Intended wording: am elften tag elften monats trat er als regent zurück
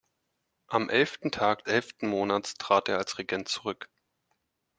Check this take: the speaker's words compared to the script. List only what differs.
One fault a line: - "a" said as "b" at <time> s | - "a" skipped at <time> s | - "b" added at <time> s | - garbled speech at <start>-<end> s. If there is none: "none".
none